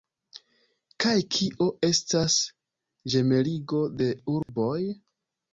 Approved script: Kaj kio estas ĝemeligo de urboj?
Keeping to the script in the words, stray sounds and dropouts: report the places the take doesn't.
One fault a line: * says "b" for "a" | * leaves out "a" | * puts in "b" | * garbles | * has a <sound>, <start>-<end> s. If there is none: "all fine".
* has a dropout, 4.4-4.5 s